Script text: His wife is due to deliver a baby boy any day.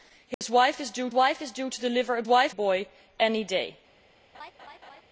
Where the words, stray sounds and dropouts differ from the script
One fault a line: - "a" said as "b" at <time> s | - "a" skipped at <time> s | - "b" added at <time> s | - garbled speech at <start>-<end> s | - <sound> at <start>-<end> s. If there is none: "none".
- dropout at 0.3-0.4 s
- "wife is due" added at 1.1 s
- "baby" said as "wife" at 2.3 s
- laugh at 4.3-5.0 s